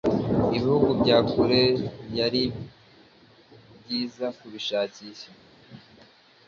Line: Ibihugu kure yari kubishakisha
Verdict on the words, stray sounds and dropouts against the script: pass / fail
fail